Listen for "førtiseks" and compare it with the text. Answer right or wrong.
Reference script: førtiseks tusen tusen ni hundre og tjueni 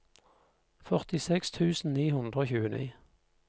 right